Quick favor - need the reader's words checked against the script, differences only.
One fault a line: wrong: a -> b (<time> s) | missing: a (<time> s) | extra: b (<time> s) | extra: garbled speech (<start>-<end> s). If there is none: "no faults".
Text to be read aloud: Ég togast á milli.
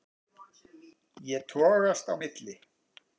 no faults